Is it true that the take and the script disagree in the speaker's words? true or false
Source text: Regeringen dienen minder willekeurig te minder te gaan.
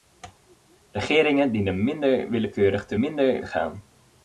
false